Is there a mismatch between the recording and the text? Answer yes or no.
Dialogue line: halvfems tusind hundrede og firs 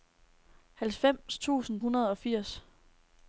no